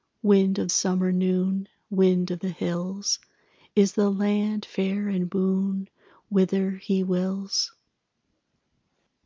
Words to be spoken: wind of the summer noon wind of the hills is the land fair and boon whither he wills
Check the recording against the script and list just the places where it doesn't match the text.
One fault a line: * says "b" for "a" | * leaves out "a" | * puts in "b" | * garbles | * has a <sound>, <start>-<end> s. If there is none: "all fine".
* leaves out "the"